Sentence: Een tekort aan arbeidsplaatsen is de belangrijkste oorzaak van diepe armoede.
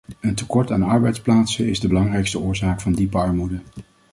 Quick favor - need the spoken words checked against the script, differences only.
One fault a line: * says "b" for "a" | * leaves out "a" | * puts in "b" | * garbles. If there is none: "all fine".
all fine